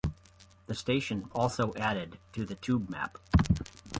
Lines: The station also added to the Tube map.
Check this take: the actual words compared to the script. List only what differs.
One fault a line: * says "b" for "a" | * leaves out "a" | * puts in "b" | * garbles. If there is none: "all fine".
all fine